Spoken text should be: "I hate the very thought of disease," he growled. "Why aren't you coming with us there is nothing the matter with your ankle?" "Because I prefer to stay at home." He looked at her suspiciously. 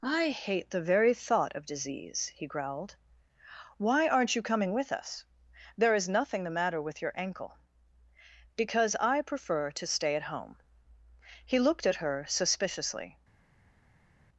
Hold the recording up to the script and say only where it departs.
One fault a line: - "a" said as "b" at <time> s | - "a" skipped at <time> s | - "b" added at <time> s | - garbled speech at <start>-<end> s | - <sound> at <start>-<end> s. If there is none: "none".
none